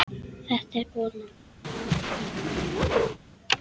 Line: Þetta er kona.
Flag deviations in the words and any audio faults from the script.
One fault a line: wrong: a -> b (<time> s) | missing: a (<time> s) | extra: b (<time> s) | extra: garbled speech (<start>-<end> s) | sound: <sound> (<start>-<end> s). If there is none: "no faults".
sound: whoosh (1.6-3.2 s)